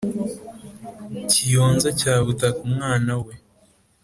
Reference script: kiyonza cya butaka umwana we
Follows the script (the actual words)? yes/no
yes